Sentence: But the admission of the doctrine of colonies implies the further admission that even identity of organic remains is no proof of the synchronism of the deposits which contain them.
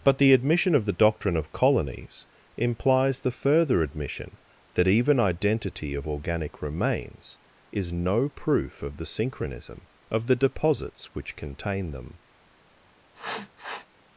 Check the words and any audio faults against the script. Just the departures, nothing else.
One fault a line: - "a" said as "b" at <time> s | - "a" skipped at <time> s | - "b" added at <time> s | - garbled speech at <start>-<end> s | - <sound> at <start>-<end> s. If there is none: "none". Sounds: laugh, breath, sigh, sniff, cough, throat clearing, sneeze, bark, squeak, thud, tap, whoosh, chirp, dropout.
- sniff at 13.1-13.9 s